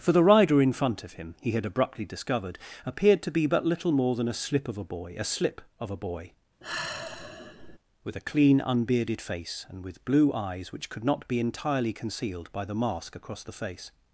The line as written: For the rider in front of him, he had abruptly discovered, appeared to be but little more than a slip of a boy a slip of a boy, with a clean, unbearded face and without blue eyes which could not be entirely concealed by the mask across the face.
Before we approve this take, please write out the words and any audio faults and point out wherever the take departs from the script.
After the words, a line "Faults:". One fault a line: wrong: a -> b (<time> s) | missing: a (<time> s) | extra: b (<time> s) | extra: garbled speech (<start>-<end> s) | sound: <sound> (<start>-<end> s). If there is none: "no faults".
For the rider in front of him, he had abruptly discovered, appeared to be but little more than a slip of a boy a slip of a boy, with a clean, unbearded face and with blue eyes which could not be entirely concealed by the mask across the face.
Faults:
sound: sigh (6.6-7.8 s)
wrong: without -> with (9.9 s)